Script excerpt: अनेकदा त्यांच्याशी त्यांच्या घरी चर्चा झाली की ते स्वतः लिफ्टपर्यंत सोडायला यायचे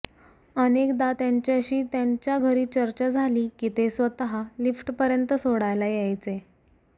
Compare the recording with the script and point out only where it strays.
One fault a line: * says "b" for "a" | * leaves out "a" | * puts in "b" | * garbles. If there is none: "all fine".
all fine